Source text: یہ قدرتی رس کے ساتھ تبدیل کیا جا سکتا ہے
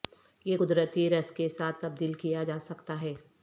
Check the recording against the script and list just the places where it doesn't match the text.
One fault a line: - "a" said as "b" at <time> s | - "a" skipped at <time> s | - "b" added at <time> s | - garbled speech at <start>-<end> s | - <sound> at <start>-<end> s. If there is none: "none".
none